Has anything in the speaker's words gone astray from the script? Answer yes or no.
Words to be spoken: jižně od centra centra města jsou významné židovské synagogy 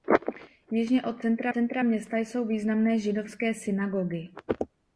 no